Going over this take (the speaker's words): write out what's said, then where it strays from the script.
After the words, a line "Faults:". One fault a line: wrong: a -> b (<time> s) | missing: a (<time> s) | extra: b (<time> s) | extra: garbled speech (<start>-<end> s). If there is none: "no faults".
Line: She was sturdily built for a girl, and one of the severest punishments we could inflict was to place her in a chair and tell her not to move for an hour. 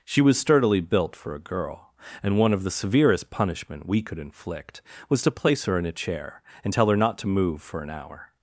She was sturdily built for a girl, and one of the severest punishment we could inflict was to place her in a chair and tell her not to move for an hour.
Faults:
wrong: punishments -> punishment (3.3 s)